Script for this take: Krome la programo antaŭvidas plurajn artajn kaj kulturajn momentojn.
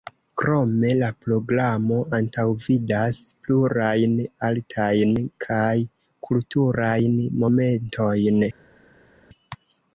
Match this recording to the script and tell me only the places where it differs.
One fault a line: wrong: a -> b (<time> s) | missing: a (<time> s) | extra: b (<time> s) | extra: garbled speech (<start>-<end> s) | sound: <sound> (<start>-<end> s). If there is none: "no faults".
no faults